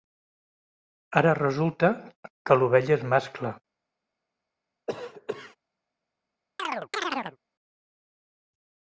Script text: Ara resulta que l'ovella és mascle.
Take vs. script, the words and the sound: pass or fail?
fail